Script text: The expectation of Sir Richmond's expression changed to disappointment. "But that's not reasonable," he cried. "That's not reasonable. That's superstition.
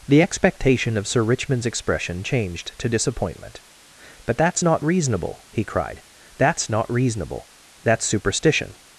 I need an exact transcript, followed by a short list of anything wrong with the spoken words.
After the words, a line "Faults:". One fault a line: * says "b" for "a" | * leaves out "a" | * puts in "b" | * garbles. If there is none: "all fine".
The expectation of Sir Richmond's expression changed to disappointment. "But that's not reasonable," he cried. "That's not reasonable. That's superstition.
Faults:
all fine